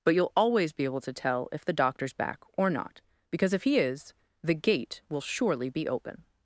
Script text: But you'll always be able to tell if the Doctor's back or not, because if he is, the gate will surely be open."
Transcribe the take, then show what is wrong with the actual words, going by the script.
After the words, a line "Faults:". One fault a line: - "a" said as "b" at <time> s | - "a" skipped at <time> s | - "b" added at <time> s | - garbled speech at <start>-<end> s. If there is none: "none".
But you'll always be able to tell if the Doctor's back or not, because if he is, the gate will surely be open."
Faults:
none